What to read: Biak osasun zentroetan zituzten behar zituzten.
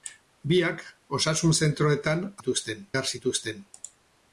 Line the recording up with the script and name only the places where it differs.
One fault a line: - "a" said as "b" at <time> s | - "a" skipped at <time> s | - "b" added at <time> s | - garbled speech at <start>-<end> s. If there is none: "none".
none